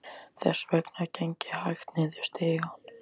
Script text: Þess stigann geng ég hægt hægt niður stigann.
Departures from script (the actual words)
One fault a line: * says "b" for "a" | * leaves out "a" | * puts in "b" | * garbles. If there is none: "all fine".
* says "vegna" for "stigann"
* leaves out "hægt"